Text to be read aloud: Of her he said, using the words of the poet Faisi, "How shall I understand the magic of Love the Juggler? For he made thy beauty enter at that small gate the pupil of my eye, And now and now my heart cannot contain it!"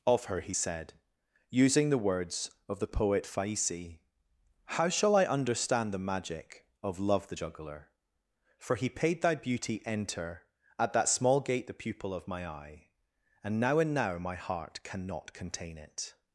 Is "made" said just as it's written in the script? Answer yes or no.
no